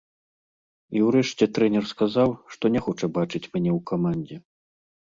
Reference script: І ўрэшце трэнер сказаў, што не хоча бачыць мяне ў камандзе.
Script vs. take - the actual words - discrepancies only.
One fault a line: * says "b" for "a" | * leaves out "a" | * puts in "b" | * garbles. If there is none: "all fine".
all fine